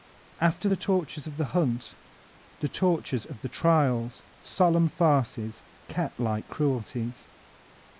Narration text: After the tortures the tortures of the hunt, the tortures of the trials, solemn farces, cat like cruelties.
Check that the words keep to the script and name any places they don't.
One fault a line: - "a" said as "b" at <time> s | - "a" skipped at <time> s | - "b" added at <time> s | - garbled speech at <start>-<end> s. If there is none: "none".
- "the tortures" skipped at 1.3 s